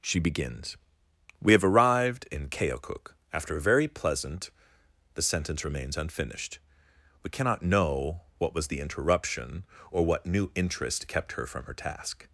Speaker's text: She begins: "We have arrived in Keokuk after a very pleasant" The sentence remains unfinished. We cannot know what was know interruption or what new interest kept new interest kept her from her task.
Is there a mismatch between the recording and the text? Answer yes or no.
yes